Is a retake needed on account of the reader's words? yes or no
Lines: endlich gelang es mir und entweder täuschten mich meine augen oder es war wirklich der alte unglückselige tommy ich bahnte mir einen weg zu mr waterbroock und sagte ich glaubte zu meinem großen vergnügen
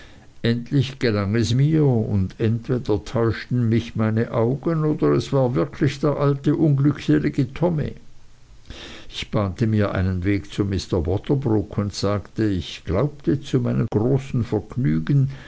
no